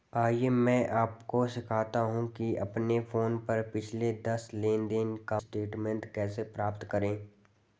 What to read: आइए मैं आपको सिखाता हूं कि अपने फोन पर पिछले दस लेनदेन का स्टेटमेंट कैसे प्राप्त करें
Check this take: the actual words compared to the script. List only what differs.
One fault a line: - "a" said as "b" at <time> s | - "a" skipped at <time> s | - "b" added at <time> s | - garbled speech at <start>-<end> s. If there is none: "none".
none